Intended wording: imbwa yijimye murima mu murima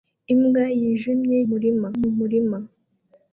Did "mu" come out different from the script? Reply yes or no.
no